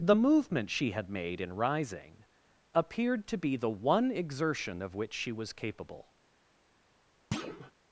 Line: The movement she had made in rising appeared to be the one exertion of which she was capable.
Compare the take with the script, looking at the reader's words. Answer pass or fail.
pass